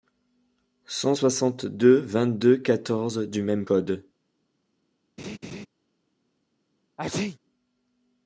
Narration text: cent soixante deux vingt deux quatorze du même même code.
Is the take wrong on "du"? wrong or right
right